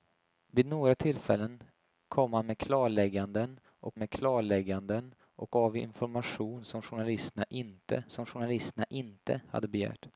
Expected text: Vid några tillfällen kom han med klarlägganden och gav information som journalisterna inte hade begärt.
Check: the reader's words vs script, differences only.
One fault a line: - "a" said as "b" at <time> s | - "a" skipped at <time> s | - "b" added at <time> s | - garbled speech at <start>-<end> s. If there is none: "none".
- "med klarlägganden och" added at 4.0 s
- "som journalisterna inte" added at 8.1 s